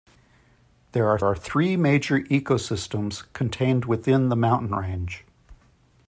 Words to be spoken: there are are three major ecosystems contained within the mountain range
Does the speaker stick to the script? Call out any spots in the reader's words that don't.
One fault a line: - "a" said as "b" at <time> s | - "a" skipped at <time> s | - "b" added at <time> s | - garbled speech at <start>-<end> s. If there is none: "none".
none